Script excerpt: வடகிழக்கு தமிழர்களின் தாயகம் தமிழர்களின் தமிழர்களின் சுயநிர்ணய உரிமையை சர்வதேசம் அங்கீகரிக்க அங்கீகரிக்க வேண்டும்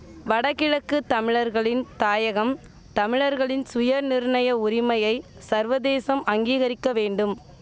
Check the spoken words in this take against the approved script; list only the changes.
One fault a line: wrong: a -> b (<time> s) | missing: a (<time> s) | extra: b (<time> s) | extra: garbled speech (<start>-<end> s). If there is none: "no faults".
missing: தமிழர்களின் (3.6 s)
missing: அங்கீகரிக்க (6.9 s)